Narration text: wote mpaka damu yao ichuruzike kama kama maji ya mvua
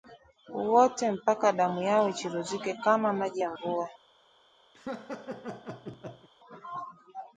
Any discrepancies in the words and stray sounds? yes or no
yes